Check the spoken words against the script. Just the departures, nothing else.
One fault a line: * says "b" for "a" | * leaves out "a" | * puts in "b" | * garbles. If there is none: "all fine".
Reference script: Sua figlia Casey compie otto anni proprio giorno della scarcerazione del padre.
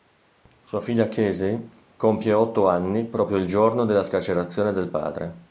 * puts in "il"